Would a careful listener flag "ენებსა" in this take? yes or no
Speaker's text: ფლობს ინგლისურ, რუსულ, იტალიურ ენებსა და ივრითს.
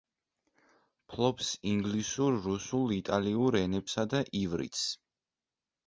no